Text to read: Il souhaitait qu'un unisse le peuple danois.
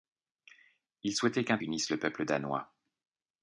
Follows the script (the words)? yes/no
yes